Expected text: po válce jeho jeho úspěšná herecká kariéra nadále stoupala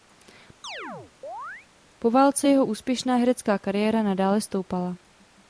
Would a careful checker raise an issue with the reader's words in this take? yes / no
yes